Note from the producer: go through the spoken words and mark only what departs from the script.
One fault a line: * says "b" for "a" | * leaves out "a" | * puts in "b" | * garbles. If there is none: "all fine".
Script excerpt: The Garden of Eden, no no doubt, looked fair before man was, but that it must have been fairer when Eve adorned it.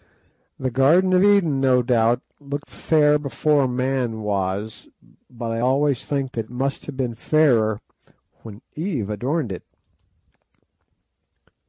* leaves out "no"
* puts in "I always think"